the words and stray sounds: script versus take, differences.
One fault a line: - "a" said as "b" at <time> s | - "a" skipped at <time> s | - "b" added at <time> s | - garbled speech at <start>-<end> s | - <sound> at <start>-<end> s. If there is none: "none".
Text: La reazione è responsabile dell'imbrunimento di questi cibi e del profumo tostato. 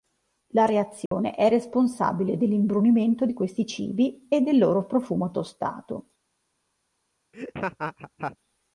- dropout at 1.1-1.1 s
- "loro" added at 4.6 s
- laugh at 7.3-8.4 s